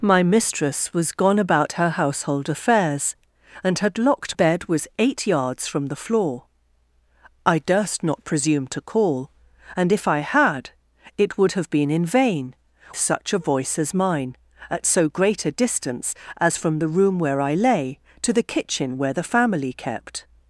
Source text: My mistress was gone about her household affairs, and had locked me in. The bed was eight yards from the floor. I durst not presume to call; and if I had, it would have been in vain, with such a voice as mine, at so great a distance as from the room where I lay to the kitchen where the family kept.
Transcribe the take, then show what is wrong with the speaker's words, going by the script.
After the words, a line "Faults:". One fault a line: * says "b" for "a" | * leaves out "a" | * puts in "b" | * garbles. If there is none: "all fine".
My mistress was gone about her household affairs, and had locked bed was eight yards from the floor. I durst not presume to call; and if I had, it would have been in vain, such a voice as mine, at so great a distance as from the room where I lay to the kitchen where the family kept.
Faults:
* leaves out "me in The"
* leaves out "with"